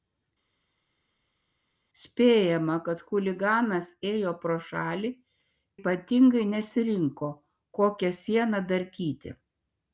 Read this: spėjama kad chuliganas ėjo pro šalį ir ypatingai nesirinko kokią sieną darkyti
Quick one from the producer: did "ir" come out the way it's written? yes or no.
no